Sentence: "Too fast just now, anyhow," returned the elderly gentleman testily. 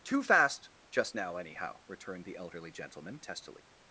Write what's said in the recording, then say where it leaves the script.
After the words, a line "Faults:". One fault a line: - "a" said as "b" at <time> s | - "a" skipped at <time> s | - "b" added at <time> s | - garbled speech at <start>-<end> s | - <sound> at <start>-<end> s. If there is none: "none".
"Too fast just now, anyhow," returned the elderly gentleman testily.
Faults:
none